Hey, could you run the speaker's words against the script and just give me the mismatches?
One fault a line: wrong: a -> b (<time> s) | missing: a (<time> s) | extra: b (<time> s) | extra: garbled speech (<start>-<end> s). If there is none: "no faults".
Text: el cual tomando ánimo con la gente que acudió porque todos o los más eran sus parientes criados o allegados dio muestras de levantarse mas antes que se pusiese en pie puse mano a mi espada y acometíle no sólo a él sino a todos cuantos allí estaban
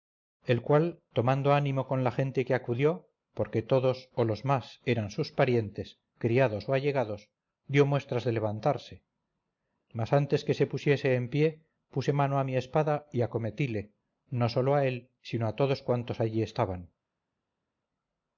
no faults